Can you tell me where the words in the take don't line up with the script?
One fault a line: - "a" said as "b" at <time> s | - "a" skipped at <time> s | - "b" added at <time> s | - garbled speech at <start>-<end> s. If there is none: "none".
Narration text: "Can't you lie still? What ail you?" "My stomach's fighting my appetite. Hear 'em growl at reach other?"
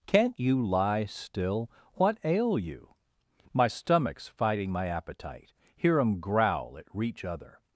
none